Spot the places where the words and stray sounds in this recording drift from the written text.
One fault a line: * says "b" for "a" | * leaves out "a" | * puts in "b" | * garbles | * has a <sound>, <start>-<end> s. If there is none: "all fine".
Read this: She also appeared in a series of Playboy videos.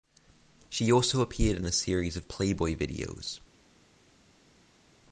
all fine